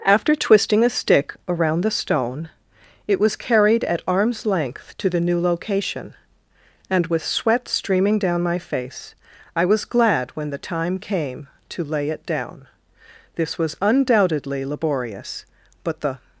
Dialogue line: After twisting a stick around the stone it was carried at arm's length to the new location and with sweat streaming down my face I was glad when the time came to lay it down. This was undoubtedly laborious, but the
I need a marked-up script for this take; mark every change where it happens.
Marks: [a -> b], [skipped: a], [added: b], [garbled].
After twisting a stick around the stone it was carried at arm's length to the new location and with sweat streaming down my face I was glad when the time came to lay it down. This was undoubtedly laborious, but the